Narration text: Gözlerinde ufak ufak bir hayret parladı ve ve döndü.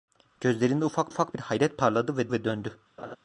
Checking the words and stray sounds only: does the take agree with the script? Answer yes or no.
no